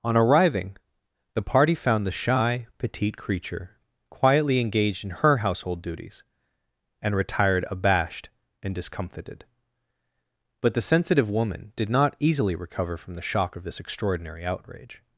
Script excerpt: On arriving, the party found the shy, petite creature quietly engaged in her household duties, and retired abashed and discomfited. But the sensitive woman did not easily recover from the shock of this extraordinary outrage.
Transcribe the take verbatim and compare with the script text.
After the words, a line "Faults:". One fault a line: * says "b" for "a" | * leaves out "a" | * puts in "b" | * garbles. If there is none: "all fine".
On arriving, the party found the shy, petite creature quietly engaged in her household duties, and retired abashed and discomfited. But the sensitive woman did not easily recover from the shock of this extraordinary outrage.
Faults:
all fine